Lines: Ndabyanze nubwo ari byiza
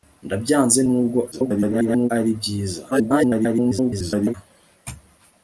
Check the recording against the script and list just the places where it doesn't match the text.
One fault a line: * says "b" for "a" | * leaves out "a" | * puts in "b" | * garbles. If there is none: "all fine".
* garbles
* garbles